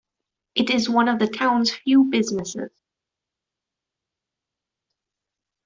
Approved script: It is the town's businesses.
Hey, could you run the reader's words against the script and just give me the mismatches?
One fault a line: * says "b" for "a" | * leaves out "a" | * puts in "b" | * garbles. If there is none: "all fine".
* puts in "one of"
* puts in "few"